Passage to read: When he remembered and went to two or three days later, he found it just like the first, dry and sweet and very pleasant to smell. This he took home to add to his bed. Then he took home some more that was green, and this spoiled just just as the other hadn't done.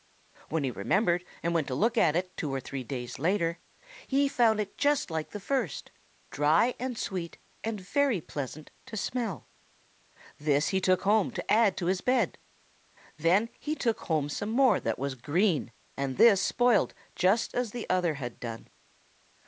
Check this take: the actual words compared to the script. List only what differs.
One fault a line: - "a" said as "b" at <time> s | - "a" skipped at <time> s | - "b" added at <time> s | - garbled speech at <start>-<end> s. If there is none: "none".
- "look at it" added at 1.8 s
- "just" skipped at 17.5 s
- "hadn't" said as "had" at 18.1 s